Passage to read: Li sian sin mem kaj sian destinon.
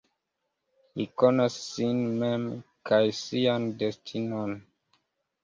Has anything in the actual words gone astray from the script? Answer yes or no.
yes